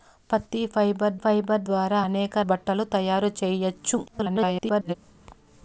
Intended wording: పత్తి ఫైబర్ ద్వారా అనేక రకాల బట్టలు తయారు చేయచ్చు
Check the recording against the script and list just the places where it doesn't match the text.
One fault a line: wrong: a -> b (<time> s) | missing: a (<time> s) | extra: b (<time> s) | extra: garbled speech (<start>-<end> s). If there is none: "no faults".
extra: ఫైబర్ (1.2 s)
missing: రకాల (2.4 s)
extra: garbled speech (4.1-4.9 s)